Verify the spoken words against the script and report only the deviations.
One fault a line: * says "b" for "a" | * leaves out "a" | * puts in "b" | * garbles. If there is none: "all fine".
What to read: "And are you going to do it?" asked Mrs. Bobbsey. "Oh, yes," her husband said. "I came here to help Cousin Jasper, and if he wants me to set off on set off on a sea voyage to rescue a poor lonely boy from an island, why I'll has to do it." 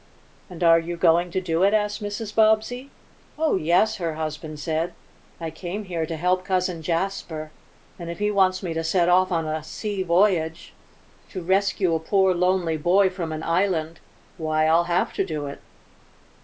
* leaves out "set off on"
* says "have" for "has"